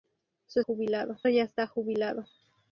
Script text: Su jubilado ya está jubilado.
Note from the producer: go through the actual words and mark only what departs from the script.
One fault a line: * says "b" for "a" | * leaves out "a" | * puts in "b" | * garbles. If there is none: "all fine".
all fine